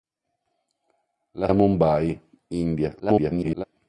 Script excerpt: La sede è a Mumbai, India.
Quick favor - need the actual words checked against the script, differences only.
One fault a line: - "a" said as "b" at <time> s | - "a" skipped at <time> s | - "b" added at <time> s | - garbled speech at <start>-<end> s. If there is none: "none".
- "sede" skipped at 1.5 s
- garbled speech at 3.0-3.6 s